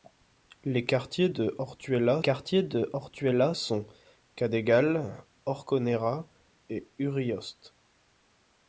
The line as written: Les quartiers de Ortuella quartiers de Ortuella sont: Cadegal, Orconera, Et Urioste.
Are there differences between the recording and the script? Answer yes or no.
no